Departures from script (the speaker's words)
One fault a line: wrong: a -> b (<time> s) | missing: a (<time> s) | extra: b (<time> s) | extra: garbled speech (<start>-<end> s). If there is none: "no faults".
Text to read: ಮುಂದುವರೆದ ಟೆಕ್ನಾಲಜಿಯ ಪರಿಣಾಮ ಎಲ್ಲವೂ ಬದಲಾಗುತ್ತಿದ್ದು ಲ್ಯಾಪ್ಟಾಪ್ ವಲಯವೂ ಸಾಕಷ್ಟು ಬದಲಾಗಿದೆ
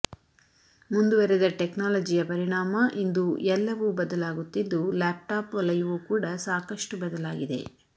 extra: ಇಂದು (3.0 s)
extra: ಕೂಡ (6.1 s)